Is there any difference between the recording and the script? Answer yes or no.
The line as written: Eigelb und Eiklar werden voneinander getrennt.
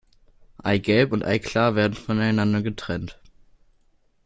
no